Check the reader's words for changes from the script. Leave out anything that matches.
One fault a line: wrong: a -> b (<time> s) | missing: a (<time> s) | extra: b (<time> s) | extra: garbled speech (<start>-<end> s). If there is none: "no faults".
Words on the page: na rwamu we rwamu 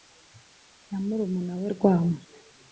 wrong: rwamu -> murumuna (1.1 s)